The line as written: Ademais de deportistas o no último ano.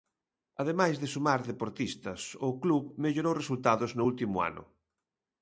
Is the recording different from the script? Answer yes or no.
yes